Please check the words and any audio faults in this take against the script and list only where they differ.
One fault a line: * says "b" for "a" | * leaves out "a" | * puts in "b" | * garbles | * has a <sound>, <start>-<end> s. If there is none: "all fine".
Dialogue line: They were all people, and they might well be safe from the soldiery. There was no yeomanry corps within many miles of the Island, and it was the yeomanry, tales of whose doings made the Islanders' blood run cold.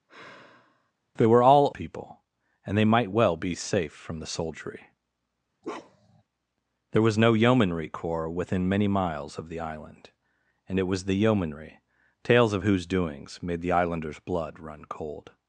* has a sigh, 0.1-0.9 s
* has a bark, 5.6-6.2 s